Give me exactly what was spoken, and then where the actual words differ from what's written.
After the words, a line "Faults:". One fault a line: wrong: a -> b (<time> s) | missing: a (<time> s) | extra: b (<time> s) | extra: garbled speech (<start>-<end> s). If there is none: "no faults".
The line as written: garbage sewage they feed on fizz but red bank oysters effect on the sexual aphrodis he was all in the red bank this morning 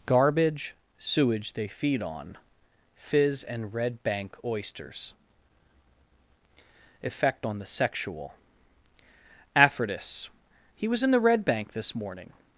garbage sewage they feed on fizz and red bank oysters effect on the sexual aphrodis he was in the red bank this morning
Faults:
wrong: but -> and (3.4 s)
missing: all (11.0 s)